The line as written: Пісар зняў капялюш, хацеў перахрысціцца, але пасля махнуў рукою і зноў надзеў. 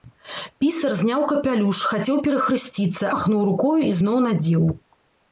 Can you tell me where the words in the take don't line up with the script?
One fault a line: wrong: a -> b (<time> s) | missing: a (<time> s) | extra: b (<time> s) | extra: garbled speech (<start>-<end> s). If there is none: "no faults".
missing: але пасля (3.0 s)